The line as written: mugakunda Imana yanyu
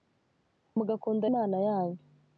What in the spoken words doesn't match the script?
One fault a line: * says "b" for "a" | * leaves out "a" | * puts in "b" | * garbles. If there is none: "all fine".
all fine